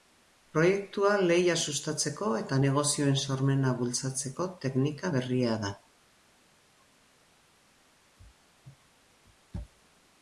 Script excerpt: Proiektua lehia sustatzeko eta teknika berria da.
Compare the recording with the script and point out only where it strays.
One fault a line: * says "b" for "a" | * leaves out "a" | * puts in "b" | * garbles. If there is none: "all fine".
* puts in "negozioen sormena bultzatzeko"